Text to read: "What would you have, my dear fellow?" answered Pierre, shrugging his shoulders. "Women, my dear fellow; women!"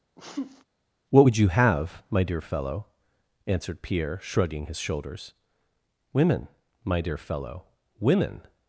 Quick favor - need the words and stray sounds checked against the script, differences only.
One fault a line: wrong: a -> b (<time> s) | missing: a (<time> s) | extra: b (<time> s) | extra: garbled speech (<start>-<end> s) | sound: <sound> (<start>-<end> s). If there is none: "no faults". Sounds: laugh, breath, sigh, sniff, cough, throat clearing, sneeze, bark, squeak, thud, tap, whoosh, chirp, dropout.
sound: sneeze (0.2-0.6 s)